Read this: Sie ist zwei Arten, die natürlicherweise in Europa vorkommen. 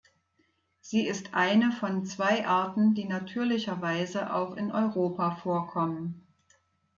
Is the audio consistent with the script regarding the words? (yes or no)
no